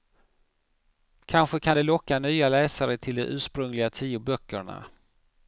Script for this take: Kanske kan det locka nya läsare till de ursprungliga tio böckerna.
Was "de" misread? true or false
false